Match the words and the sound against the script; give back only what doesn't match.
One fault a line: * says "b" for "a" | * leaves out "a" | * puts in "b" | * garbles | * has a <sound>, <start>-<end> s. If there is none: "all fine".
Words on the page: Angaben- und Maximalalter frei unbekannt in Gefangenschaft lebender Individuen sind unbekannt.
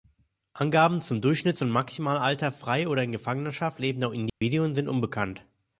* puts in "zum Durchschnitts"
* says "oder" for "unbekannt"
* has a dropout, 4.3-4.4 s